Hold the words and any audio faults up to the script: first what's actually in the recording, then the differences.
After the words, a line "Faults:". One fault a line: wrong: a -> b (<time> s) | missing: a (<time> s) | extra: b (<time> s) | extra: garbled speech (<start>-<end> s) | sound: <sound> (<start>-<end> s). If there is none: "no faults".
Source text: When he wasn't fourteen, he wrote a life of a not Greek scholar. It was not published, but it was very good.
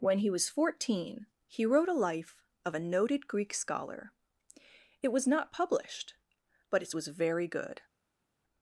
When he was fourteen, he wrote a life of a noted Greek scholar. It was not published, but it was very good.
Faults:
wrong: wasn't -> was (0.3 s)
wrong: not -> noted (2.8 s)